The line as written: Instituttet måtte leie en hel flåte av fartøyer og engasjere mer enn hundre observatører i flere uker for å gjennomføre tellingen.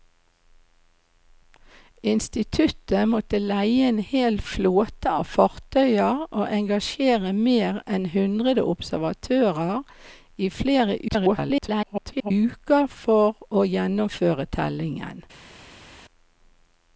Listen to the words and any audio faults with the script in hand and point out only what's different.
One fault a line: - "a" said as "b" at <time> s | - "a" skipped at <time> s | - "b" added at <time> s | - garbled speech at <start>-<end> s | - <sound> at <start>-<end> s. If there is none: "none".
- garbled speech at 11.1-12.3 s